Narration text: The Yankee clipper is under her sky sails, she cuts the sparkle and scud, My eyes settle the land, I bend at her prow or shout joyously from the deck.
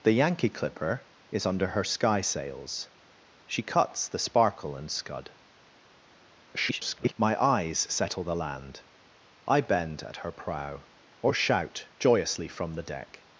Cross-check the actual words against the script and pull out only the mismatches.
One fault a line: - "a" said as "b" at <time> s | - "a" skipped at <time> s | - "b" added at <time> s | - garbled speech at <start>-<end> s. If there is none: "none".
- garbled speech at 6.5-7.1 s